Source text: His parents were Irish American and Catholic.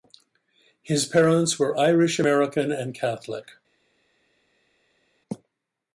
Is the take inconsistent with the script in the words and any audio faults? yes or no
no